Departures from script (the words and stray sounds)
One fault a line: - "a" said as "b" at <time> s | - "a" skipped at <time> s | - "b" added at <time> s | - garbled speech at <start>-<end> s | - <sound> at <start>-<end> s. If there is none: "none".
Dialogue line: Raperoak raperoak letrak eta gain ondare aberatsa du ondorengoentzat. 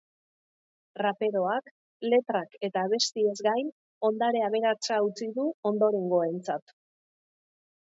- "raperoak" skipped at 1.7 s
- "abestiez" added at 2.9 s
- "utzi" added at 5.1 s